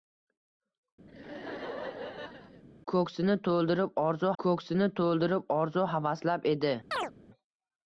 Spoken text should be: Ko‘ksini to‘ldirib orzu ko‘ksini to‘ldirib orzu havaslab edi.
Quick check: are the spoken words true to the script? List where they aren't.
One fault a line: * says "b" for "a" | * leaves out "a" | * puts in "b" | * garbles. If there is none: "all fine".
all fine